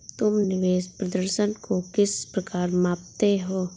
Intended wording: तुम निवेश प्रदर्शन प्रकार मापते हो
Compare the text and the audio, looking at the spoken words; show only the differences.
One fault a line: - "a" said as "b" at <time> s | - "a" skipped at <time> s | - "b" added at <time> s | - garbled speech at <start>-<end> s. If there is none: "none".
- "को किस" added at 1.6 s